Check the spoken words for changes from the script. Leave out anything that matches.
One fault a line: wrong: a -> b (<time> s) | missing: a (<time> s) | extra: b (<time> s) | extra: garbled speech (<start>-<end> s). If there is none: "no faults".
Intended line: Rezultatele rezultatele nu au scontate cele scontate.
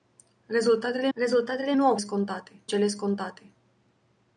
no faults